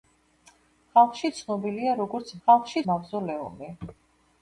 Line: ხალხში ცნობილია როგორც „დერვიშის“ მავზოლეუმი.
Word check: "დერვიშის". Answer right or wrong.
wrong